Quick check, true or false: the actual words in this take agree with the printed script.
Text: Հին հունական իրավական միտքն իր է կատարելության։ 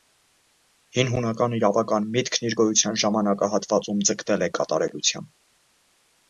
false